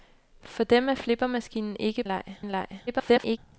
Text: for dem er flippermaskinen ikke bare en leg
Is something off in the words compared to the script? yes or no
yes